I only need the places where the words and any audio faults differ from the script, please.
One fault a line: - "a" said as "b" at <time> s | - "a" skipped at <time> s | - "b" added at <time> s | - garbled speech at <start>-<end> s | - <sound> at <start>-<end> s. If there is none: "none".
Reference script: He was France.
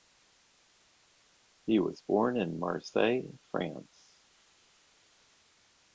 - "born in Marseille" added at 2.0 s